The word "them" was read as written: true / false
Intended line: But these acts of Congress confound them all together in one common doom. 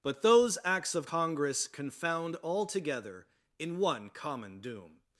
false